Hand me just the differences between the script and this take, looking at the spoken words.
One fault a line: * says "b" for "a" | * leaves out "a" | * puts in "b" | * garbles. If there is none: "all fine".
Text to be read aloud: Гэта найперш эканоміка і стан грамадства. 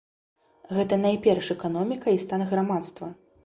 all fine